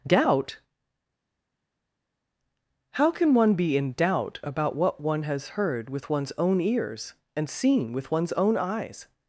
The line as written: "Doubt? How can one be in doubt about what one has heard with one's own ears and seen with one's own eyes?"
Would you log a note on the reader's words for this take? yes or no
no